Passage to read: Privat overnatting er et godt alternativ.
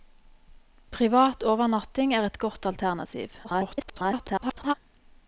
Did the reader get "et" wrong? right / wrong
right